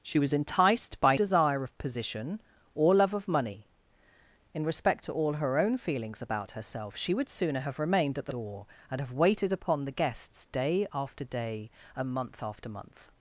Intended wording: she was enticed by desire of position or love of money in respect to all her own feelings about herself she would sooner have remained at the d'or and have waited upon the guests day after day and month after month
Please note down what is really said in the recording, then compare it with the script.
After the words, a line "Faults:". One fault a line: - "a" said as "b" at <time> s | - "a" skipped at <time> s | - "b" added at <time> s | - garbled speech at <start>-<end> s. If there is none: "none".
she was enticed by desire of position or love of money in respect to all her own feelings about herself she would sooner have remained at the d'or and have waited upon the guests day after day and month after month
Faults:
none